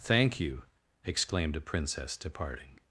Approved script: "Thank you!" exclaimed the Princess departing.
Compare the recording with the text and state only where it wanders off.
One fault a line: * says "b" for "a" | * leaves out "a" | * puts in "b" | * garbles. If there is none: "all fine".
* says "a" for "the"